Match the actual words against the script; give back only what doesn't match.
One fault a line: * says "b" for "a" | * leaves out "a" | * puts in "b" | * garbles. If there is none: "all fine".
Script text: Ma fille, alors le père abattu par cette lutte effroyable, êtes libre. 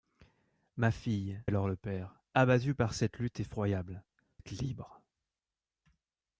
all fine